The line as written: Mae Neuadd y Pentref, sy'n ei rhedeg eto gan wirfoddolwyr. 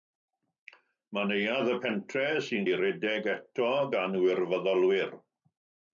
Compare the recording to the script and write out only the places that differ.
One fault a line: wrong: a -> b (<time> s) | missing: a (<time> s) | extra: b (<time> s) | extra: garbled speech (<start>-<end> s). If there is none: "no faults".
no faults